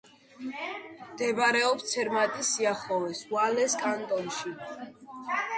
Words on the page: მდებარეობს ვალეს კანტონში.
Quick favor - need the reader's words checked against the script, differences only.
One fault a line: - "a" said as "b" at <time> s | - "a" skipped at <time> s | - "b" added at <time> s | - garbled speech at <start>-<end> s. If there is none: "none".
- "ცერმატის სიახლოვეს" added at 1.9 s